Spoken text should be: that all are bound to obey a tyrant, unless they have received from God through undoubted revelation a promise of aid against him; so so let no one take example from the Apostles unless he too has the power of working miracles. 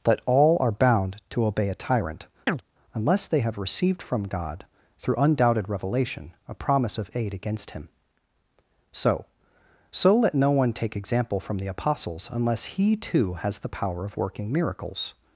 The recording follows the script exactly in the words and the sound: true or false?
false